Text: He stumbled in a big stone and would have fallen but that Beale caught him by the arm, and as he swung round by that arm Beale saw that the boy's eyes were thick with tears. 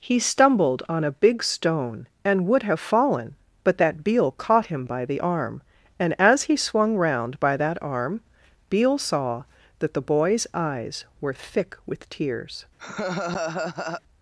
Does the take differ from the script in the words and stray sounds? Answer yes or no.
yes